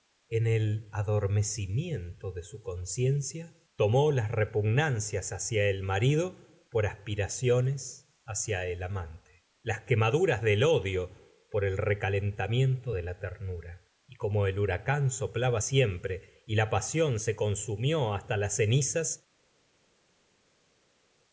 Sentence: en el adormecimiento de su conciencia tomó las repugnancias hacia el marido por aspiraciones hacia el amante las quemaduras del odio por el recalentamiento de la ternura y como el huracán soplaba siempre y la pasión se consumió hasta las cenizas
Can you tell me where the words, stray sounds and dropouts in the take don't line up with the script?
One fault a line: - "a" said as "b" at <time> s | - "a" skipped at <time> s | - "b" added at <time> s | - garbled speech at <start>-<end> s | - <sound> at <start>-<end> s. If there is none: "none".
none